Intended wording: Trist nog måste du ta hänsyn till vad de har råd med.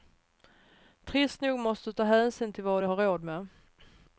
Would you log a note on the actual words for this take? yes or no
no